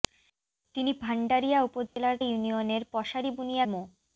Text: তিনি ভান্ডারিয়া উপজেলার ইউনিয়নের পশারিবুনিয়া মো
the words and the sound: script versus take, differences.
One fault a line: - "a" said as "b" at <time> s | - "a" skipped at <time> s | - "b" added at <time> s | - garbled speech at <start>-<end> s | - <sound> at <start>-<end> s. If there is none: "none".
- dropout at 1.9-2.0 s